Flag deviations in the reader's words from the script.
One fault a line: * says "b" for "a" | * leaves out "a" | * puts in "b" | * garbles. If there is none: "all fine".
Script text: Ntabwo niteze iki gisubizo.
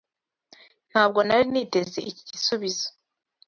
* puts in "nari"